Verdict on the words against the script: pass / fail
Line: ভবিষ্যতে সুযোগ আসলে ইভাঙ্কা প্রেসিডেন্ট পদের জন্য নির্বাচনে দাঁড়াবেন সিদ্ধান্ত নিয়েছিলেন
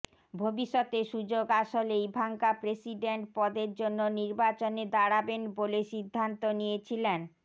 fail